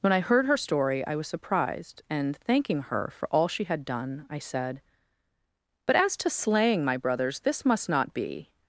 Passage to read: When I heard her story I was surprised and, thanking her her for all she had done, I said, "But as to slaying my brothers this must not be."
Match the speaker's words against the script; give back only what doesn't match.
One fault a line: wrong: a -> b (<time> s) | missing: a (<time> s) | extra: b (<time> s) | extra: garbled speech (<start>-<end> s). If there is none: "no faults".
missing: her (3.1 s)